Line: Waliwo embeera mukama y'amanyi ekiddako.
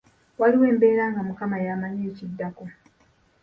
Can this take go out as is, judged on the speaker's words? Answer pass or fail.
fail